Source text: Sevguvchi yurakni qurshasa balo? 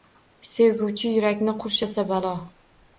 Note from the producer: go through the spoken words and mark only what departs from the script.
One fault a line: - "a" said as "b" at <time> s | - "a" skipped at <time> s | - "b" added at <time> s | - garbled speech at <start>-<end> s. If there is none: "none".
none